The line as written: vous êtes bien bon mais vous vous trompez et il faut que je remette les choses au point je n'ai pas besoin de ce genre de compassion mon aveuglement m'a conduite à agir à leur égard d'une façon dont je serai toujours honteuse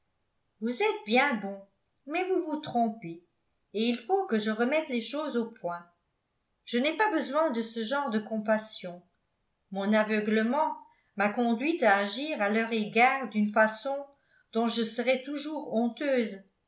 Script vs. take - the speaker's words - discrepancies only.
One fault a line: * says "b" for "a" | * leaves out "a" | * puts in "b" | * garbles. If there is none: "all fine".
all fine